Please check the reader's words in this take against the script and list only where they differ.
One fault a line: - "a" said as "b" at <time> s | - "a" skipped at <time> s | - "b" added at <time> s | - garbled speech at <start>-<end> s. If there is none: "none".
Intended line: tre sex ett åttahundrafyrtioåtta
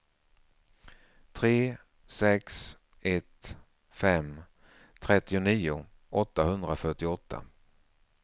- "fem trettionio" added at 3.9 s